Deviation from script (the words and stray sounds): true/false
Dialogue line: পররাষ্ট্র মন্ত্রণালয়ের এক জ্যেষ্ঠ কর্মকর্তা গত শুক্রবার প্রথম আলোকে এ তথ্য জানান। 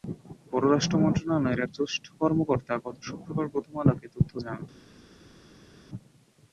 false